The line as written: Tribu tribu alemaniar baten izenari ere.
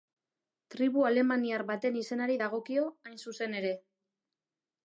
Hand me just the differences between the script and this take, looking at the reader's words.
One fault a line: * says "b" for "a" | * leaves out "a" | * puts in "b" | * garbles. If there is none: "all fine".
* leaves out "tribu"
* puts in "dagokio hain zuzen"